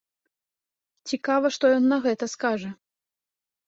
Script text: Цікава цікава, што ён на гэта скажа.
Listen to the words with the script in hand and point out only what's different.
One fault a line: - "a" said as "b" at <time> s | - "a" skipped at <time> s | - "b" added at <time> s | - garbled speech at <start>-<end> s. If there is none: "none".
- "цікава" skipped at 1.5 s